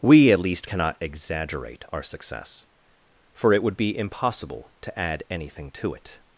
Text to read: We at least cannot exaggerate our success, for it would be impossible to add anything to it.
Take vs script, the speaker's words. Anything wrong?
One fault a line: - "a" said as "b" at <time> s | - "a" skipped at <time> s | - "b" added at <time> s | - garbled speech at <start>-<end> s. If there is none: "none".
none